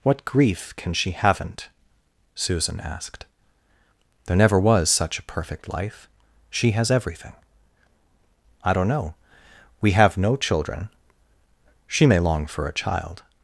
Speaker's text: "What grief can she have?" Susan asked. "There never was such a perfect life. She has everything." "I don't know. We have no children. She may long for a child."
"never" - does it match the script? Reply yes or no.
yes